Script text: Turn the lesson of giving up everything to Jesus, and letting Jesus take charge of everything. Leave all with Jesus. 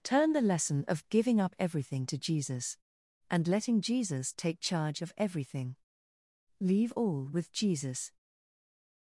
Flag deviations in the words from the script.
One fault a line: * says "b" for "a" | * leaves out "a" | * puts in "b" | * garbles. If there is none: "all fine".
all fine